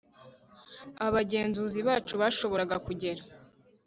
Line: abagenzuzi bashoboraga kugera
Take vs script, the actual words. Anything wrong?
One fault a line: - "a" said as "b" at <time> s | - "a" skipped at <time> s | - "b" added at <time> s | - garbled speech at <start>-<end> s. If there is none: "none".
- "bacu" added at 1.9 s